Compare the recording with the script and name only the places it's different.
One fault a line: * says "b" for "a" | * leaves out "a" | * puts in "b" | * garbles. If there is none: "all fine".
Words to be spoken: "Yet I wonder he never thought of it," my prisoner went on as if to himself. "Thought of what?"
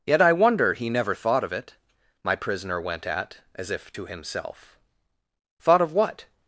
* says "at" for "on"